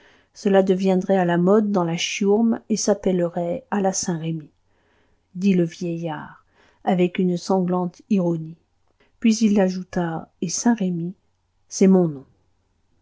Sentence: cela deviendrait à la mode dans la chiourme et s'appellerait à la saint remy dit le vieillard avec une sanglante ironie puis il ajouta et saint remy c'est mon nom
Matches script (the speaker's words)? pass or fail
pass